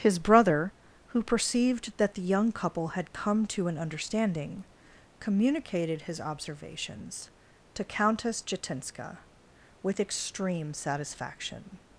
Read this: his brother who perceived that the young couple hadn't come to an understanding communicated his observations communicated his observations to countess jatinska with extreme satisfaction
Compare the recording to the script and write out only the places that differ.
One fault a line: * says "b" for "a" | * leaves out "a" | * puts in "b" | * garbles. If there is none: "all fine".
* says "had" for "hadn't"
* leaves out "communicated his observations"